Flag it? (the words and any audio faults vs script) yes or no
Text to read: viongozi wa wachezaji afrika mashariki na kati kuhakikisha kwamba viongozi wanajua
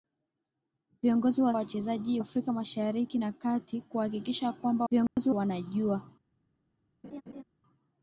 yes